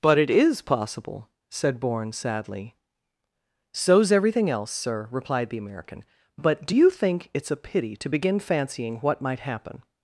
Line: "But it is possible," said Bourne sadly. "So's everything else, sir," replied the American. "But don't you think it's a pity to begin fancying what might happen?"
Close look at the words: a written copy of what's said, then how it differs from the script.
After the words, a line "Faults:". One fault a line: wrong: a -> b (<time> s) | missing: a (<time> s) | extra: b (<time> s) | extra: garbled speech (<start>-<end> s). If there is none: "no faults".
"But it is possible," said Bourne sadly. "So's everything else, sir," replied the American. "But do you think it's a pity to begin fancying what might happen?"
Faults:
wrong: don't -> do (6.7 s)